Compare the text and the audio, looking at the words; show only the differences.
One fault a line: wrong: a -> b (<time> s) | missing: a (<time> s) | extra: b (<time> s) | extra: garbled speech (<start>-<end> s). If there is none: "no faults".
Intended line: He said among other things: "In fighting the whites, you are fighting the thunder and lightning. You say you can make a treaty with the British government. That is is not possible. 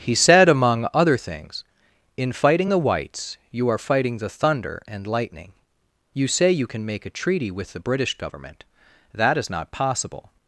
missing: is (9.5 s)